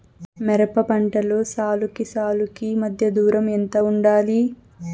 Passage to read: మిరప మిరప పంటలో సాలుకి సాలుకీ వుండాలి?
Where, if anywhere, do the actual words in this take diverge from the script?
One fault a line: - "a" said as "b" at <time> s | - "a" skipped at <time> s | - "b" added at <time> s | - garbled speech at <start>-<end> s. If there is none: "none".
- "మిరప" skipped at 0.8 s
- "మధ్య దూరం ఎంత" added at 2.8 s